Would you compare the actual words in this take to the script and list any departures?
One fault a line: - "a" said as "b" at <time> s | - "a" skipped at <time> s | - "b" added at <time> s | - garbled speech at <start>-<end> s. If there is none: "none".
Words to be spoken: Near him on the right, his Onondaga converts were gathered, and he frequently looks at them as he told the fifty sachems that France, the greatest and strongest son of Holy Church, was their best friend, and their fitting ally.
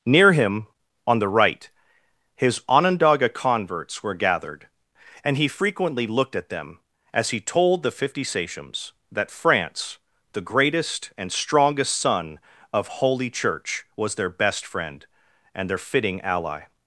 - "looks" said as "looked" at 6.1 s